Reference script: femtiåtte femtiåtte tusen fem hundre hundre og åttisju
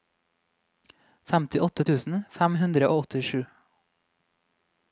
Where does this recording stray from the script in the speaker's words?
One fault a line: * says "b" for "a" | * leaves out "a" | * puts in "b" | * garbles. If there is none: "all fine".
* leaves out "femtiåtte"
* leaves out "hundre"